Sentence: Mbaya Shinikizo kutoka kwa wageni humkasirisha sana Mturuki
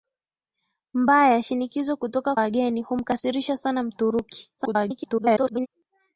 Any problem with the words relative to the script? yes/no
yes